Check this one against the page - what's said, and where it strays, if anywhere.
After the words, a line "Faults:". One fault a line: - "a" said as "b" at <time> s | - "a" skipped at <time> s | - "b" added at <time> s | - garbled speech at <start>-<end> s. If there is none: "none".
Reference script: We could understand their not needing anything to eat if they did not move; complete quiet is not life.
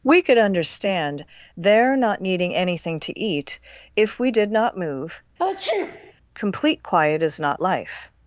We could understand their not needing anything to eat if we did not move; complete quiet is not life.
Faults:
- "they" said as "we" at 4.2 s